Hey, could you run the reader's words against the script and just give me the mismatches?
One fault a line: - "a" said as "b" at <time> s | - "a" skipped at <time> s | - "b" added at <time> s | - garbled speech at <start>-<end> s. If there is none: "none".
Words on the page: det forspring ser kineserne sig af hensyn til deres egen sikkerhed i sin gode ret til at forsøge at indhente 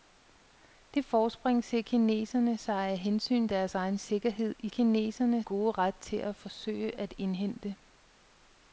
- "til" skipped at 3.5 s
- "sin" said as "kineserne" at 4.7 s